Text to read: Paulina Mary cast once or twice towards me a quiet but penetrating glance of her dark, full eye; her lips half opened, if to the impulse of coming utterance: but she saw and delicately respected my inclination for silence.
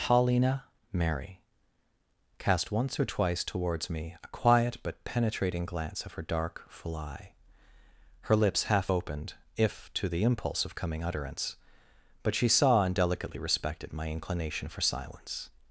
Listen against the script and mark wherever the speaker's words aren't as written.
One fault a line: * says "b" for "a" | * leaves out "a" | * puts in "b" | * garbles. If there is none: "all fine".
all fine